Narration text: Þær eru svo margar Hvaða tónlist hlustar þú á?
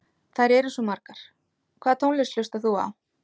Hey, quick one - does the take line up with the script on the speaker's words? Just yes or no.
yes